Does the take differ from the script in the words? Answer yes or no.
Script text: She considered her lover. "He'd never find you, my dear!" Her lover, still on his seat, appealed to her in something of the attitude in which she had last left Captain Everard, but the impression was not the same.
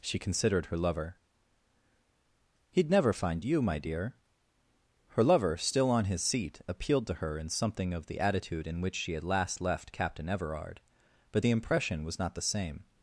no